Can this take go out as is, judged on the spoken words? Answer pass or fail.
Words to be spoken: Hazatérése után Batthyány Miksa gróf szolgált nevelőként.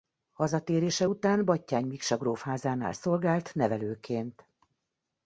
fail